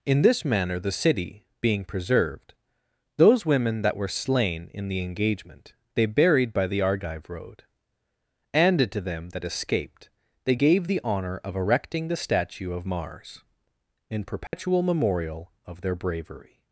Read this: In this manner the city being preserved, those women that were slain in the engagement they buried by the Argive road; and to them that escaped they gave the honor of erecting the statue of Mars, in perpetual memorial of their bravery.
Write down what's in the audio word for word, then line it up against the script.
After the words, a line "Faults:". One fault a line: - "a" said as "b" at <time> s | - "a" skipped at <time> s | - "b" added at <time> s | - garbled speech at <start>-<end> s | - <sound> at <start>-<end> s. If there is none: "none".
In this manner the city being preserved, those women that were slain in the engagement they buried by the Argive road; and to them that escaped they gave the honor of erecting the statue of Mars, in perpetual memorial of their bravery.
Faults:
- dropout at 14.5-14.5 s